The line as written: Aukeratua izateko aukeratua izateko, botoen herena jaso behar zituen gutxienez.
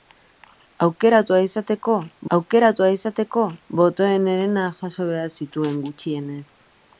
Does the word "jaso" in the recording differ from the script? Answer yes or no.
no